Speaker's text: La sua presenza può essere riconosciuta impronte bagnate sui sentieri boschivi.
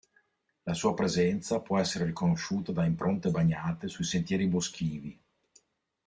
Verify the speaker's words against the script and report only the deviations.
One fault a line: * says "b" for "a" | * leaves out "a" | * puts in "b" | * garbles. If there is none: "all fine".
* puts in "da"